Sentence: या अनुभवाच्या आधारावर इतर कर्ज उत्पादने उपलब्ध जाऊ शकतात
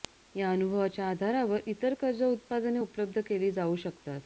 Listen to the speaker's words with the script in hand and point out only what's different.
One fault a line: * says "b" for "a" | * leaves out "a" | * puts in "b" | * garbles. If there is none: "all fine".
* puts in "केली"